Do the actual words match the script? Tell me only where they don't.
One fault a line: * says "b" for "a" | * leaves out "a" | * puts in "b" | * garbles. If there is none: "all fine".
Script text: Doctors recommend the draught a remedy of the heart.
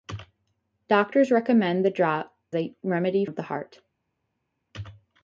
all fine